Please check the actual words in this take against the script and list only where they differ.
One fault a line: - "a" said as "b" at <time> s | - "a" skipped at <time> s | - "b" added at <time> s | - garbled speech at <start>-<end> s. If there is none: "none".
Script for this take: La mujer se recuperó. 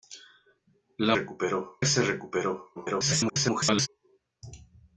- "mujer" said as "recuperó" at 1.1 s
- garbled speech at 2.8-3.9 s